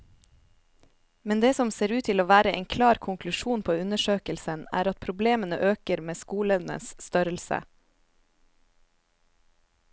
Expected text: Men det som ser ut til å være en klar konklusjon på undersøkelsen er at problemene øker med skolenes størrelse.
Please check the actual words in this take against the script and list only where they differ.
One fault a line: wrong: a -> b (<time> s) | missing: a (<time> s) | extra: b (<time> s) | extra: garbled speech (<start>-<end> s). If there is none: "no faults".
no faults